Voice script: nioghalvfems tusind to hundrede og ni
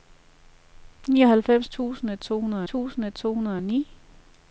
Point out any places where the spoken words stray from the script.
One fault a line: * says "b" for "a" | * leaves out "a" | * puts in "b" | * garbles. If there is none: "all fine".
* puts in "tusind to hundrede"